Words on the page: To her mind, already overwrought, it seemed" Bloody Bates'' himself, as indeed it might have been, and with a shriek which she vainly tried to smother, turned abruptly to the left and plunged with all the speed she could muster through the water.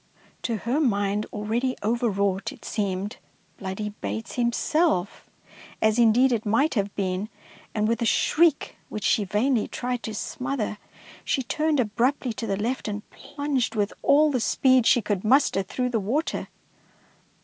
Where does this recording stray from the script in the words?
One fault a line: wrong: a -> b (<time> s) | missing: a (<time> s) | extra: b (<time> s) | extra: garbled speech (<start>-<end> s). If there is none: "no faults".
extra: she (11.2 s)